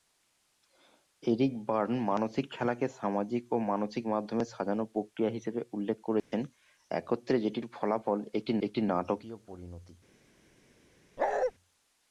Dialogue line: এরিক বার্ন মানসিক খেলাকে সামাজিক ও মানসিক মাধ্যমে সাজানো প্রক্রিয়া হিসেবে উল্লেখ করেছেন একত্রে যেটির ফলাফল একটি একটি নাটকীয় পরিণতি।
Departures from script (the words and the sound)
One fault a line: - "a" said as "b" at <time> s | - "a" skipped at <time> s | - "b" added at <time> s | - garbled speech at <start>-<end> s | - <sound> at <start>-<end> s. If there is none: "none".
- dropout at 6.2-6.3 s
- bark at 11.2-11.5 s